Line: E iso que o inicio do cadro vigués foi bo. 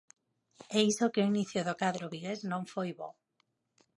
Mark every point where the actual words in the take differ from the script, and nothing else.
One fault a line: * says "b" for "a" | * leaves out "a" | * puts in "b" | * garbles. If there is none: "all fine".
* puts in "non"